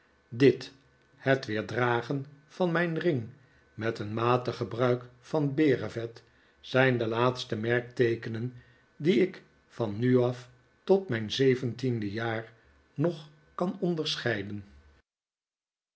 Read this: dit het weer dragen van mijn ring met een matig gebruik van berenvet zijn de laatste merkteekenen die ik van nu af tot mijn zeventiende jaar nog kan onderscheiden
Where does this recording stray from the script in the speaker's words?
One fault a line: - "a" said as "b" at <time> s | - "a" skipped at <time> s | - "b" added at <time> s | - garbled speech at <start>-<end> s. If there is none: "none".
none